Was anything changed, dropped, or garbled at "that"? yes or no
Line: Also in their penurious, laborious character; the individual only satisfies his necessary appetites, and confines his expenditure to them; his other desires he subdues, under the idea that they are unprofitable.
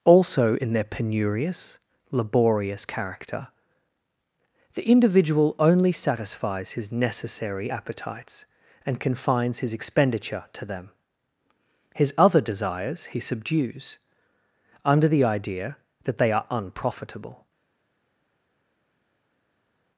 no